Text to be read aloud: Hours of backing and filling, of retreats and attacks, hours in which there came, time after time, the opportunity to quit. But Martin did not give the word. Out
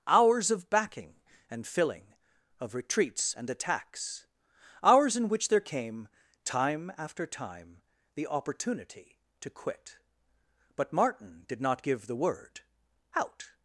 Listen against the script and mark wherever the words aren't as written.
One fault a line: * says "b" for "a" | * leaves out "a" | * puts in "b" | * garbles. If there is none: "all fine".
all fine